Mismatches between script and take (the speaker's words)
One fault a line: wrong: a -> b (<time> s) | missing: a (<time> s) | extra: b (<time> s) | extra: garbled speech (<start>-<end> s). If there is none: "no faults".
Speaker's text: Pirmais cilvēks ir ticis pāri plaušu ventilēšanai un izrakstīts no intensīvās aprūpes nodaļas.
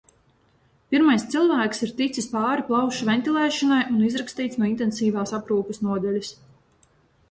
no faults